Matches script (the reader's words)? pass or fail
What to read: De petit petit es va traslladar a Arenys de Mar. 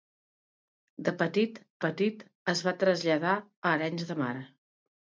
pass